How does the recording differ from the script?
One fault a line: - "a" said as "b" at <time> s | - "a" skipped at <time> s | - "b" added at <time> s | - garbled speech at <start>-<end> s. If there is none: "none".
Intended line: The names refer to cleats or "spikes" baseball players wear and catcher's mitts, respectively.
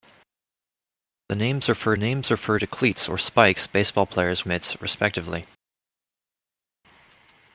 - "names refer" added at 2.0 s
- "wear and catcher's" skipped at 4.4 s